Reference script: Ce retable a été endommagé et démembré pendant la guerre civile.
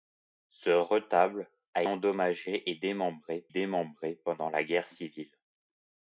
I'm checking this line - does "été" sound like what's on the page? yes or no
no